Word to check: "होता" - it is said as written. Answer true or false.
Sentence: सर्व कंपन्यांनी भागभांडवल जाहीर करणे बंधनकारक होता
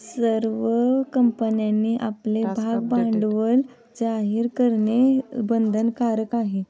false